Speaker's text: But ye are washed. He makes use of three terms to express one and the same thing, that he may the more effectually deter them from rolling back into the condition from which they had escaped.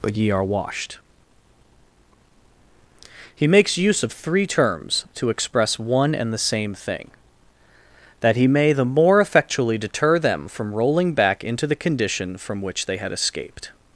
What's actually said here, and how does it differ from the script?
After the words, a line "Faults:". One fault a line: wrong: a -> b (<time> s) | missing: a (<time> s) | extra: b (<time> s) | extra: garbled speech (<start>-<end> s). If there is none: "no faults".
But ye are washed. He makes use of three terms to express one and the same thing, that he may the more effectually deter them from rolling back into the condition from which they had escaped.
Faults:
no faults